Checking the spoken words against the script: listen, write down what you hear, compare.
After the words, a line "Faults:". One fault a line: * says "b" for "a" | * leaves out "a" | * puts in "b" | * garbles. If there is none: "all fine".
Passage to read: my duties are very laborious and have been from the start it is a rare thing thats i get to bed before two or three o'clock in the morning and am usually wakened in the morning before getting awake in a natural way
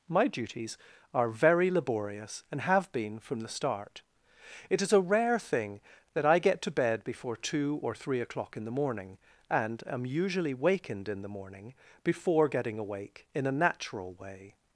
my duties are very laborious and have been from the start it is a rare thing that i get to bed before two or three o'clock in the morning and am usually wakened in the morning before getting awake in a natural way
Faults:
* says "that" for "thats"